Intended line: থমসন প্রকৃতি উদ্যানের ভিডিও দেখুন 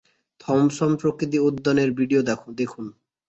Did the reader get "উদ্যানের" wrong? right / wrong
right